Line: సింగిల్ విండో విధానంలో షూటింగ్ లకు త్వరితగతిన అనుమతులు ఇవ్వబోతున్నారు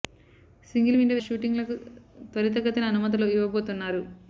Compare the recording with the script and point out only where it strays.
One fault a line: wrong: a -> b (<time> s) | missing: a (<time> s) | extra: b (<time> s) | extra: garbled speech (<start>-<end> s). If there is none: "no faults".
missing: విధానంలో (1.2 s)